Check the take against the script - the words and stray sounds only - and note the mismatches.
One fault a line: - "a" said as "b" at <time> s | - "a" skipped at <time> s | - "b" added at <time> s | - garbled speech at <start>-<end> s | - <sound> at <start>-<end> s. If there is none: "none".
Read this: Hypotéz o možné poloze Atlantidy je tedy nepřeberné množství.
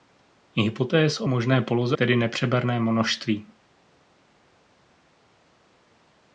- "Atlantidy je" skipped at 2.0 s